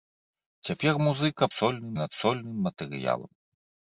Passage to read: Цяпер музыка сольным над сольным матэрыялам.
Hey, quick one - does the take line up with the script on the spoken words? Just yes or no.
yes